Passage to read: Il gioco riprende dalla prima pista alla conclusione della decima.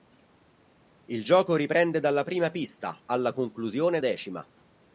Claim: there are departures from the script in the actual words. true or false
true